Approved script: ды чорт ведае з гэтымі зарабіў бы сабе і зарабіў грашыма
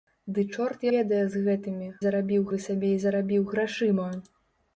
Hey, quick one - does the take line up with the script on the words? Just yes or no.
yes